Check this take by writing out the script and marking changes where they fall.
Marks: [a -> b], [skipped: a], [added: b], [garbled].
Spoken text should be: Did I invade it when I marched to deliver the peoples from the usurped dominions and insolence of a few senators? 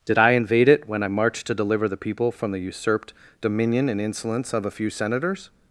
Did I invade it when I marched to deliver the [peoples -> people] from the usurped [dominions -> dominion] and insolence of a few senators?